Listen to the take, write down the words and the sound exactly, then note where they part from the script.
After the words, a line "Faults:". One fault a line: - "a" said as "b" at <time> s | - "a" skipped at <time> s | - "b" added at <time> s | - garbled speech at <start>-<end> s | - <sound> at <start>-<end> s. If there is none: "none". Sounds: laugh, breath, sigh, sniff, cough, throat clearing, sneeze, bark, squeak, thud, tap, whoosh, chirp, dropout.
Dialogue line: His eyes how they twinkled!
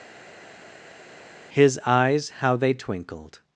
His eyes how they twinkled!
Faults:
none